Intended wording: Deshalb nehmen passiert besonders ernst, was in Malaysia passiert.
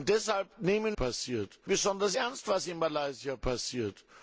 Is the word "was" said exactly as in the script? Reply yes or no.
yes